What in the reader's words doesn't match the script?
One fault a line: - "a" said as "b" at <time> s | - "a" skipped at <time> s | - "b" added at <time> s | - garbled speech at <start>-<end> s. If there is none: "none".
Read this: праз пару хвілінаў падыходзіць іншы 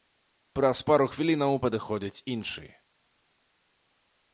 none